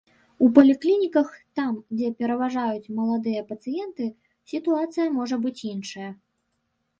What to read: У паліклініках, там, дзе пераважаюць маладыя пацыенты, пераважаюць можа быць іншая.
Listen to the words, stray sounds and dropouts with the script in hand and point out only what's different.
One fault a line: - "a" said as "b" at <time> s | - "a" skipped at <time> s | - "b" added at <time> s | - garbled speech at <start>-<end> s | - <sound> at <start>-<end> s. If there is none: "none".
- "пераважаюць" said as "сітуацыя" at 4.5 s